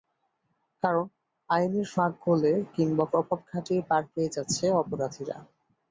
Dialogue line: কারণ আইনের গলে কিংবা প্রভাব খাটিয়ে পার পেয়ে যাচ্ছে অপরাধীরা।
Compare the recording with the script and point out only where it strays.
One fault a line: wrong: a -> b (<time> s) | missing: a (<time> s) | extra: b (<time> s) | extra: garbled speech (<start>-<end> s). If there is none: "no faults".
extra: ফাঁক (1.9 s)